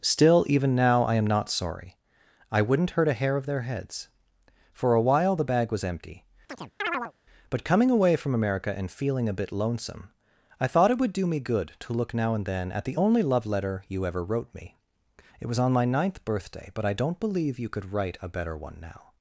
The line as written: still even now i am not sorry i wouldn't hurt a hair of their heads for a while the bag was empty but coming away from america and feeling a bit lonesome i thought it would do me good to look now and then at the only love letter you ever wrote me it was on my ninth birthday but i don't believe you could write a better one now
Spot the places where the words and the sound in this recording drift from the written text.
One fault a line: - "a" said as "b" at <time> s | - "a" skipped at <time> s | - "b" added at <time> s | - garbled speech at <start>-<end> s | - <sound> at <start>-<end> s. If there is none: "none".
- chirp at 6.5-7.1 s